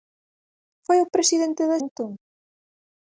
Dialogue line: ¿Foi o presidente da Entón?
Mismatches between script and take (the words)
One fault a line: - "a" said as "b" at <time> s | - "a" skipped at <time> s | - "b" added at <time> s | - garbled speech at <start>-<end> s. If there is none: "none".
none